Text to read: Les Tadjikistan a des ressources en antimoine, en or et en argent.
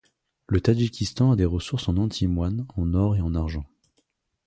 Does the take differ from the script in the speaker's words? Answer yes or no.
yes